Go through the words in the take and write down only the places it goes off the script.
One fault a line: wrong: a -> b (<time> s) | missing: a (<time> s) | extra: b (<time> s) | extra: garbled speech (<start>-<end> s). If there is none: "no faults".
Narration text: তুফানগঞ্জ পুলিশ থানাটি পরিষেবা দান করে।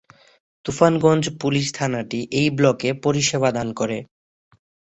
extra: এই ব্লকে (2.3 s)